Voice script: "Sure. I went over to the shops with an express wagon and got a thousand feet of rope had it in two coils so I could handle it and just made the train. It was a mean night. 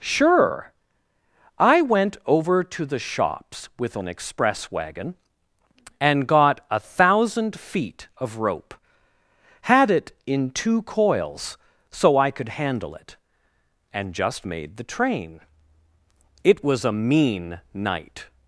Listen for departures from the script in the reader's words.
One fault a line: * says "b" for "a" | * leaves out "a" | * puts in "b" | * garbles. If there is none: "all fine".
all fine